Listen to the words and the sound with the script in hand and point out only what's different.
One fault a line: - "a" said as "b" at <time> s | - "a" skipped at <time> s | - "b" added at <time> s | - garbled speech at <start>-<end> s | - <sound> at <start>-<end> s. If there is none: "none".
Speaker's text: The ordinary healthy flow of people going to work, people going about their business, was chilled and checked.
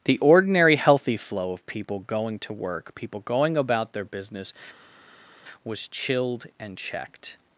none